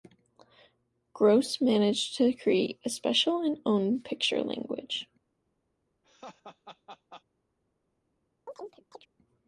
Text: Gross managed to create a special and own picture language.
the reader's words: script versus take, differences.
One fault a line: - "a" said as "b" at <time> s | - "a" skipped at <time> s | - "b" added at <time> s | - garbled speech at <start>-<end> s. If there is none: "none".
none